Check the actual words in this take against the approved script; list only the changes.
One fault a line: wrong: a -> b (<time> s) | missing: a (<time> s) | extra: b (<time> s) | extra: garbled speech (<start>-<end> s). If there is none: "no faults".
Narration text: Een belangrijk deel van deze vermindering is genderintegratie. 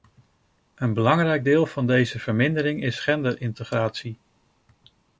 no faults